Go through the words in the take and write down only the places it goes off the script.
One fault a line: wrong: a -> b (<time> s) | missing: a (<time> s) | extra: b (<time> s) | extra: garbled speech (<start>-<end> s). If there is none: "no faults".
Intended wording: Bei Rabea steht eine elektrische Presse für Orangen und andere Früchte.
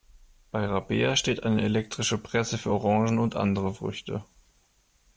no faults